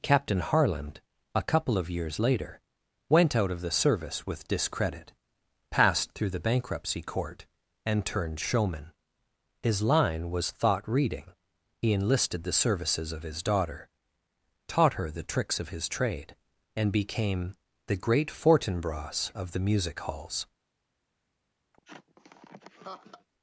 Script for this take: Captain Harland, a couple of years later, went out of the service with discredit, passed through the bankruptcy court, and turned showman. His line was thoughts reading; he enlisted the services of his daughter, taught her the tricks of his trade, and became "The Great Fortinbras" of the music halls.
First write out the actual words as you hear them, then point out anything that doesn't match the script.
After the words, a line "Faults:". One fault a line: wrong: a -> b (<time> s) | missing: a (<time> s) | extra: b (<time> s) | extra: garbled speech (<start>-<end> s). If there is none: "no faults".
Captain Harland, a couple of years later, went out of the service with discredit, passed through the bankruptcy court, and turned showman. His line was thought reading; he enlisted the services of his daughter, taught her the tricks of his trade, and became "The Great Fortinbras" of the music halls.
Faults:
wrong: thoughts -> thought (10.5 s)